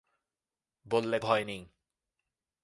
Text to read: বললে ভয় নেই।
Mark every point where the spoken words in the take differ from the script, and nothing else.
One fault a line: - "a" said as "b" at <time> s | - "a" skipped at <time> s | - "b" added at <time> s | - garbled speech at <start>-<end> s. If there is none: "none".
none